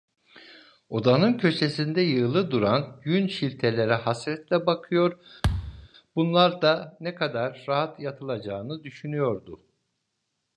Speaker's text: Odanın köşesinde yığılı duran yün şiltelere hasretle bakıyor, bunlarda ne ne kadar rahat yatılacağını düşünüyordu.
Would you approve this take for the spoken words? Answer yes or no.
no